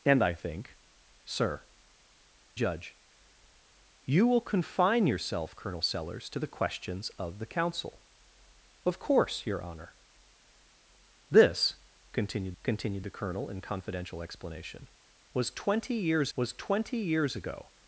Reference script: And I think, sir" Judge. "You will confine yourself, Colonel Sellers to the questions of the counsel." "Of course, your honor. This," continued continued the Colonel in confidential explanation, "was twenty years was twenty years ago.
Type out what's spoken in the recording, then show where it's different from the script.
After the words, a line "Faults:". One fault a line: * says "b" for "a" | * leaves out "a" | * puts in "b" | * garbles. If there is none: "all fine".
And I think, sir" Judge. "You will confine yourself, Colonel Sellers to the questions of the counsel." "Of course, your honor. This," continued continued the Colonel in confidential explanation, "was twenty years was twenty years ago.
Faults:
all fine